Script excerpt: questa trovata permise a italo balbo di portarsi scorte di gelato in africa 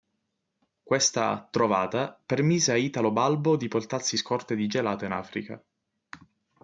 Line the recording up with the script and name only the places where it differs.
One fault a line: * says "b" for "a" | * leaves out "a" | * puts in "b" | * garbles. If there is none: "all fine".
all fine